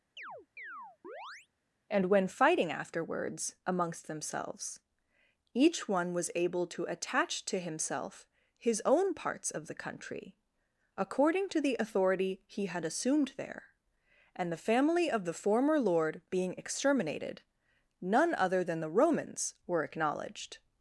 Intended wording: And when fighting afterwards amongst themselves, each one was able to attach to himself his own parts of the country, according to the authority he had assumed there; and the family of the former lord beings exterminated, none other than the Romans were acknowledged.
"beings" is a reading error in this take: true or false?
true